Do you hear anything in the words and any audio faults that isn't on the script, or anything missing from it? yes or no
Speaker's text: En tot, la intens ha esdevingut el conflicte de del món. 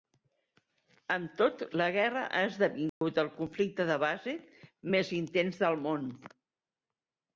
yes